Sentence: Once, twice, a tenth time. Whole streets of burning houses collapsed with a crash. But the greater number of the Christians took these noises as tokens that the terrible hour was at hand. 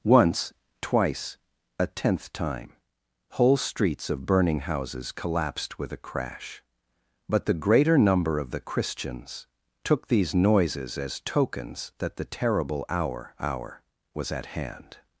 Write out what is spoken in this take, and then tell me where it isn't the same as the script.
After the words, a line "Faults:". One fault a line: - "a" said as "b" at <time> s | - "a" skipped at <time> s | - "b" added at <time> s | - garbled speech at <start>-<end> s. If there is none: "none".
Once, twice, a tenth time. Whole streets of burning houses collapsed with a crash. But the greater number of the Christians took these noises as tokens that the terrible hour hour was at hand.
Faults:
- "hour" added at 13.4 s